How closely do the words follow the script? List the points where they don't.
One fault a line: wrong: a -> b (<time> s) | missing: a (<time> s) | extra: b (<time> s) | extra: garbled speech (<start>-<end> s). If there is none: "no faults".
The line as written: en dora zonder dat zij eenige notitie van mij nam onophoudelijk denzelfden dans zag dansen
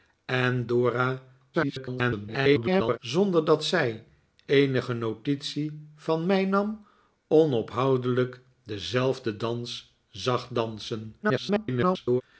extra: garbled speech (1.5-3.0 s)
extra: garbled speech (11.2-12.2 s)